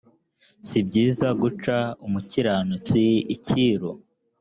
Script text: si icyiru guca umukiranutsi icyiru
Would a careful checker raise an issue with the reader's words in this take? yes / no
yes